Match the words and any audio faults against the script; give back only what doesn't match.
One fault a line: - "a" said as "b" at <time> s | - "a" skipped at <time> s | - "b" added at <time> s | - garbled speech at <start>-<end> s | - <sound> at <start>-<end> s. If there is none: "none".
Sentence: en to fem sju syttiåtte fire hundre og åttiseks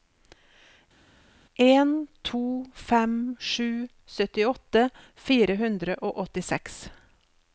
none